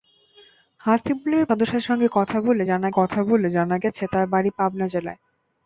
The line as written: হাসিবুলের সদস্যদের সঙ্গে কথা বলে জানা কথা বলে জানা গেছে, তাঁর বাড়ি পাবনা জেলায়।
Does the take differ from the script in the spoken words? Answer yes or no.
no